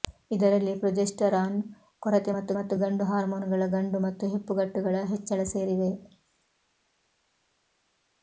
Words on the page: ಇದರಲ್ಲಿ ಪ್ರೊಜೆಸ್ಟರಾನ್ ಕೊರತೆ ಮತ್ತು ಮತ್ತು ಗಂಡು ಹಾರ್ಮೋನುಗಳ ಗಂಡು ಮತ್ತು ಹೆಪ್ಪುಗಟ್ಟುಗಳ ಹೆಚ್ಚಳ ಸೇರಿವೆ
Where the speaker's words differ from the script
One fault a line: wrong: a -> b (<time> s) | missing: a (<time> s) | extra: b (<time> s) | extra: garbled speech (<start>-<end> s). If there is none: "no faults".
no faults